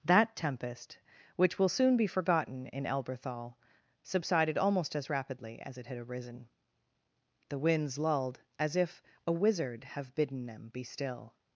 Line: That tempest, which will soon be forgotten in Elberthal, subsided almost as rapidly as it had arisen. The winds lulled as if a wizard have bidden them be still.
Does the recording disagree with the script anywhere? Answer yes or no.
no